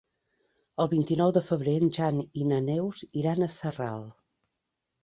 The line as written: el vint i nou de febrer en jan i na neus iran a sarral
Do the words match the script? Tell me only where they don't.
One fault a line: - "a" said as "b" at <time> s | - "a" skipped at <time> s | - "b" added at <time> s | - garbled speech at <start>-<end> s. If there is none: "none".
none